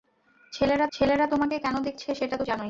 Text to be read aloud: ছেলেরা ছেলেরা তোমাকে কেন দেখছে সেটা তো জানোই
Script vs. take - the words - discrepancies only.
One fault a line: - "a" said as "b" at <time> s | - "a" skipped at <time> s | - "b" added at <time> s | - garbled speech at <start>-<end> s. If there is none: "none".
none